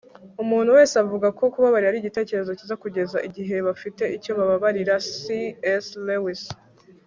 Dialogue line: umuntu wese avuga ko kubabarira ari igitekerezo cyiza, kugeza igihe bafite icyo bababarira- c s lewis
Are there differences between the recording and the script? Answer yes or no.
no